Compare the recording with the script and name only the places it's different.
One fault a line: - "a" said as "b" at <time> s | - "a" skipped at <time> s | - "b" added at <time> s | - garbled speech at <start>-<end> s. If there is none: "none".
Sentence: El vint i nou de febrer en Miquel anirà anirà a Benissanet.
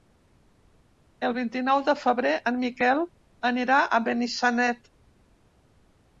- "anirà" skipped at 3.8 s